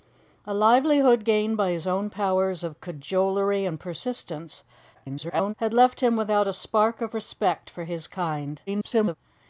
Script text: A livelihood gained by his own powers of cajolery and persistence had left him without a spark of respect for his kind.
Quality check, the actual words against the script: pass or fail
fail